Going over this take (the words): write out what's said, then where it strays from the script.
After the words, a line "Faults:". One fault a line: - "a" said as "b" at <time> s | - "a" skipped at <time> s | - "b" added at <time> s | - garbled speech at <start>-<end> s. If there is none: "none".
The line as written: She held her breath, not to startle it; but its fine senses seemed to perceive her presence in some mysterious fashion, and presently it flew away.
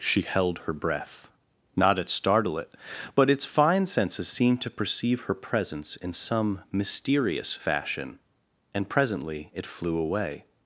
She held her breath, not at startle it; but its fine senses seemed to perceive her presence in some mysterious fashion, and presently it flew away.
Faults:
- "to" said as "at" at 2.0 s